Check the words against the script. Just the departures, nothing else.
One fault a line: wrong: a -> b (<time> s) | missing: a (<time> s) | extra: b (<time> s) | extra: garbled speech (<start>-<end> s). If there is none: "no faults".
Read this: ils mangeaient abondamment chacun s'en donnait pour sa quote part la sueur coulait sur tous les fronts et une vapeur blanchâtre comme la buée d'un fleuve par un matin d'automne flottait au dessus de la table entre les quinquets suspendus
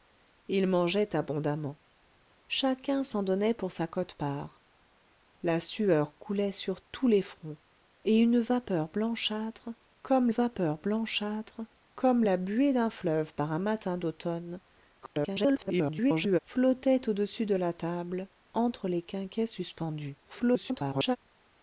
extra: vapeur blanchâtre comme (10.3 s)
extra: garbled speech (15.0-16.4 s)
extra: garbled speech (20.2-21.2 s)